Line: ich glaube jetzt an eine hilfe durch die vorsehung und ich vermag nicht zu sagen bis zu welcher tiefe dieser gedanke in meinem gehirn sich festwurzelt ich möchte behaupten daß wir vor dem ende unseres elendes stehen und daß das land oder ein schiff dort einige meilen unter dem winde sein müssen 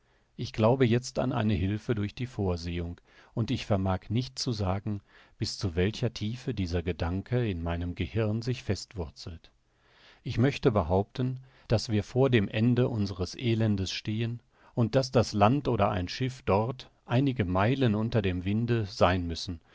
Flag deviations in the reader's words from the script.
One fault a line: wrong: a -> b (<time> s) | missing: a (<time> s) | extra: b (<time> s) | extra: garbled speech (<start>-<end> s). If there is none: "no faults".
no faults